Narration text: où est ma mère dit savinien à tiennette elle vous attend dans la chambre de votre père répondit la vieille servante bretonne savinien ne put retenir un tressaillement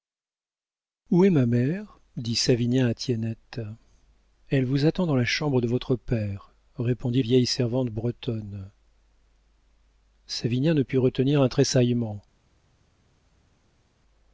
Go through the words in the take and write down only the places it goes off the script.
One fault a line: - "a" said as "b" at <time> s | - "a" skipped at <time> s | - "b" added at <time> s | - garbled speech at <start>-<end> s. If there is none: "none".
- "la" skipped at 7.2 s